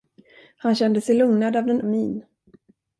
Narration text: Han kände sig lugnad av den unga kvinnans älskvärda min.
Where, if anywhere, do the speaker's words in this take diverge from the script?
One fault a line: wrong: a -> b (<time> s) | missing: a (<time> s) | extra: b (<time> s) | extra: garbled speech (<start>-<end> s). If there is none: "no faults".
missing: unga kvinnans älskvärda (1.8 s)